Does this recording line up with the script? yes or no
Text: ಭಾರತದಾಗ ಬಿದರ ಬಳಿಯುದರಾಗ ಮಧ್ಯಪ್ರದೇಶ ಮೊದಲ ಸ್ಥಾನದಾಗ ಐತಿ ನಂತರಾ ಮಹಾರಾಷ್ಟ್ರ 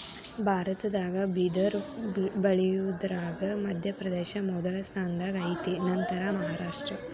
yes